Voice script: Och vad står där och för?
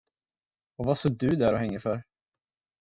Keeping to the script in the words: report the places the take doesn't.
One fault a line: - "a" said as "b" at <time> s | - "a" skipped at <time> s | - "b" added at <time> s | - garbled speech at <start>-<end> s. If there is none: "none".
- "du" added at 1.1 s
- "hänger" added at 1.6 s